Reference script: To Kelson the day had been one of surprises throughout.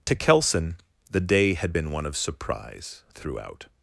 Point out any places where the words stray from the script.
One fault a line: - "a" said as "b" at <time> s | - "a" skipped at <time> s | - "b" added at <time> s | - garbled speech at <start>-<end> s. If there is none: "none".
- "surprises" said as "surprise" at 2.1 s